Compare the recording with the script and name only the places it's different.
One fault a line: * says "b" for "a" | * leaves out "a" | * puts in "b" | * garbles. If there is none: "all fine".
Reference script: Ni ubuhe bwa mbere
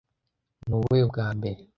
all fine